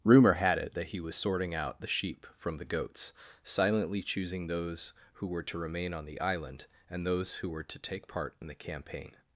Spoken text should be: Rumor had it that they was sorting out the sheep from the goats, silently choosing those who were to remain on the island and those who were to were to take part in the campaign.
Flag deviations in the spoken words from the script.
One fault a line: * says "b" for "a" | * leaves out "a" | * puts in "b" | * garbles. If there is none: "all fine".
* says "he" for "they"
* leaves out "were to"